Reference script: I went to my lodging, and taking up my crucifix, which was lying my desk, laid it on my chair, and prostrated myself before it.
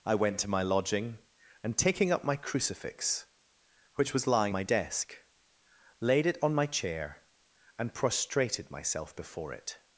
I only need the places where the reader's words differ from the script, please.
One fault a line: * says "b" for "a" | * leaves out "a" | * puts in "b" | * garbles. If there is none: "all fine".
all fine